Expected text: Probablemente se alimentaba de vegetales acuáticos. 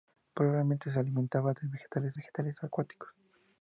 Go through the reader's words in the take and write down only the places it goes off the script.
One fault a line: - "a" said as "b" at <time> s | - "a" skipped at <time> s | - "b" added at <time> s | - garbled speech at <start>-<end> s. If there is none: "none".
- "vegetales" added at 2.1 s